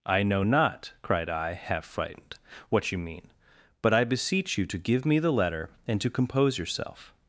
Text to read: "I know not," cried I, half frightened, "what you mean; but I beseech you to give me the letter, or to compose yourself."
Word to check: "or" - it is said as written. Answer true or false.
false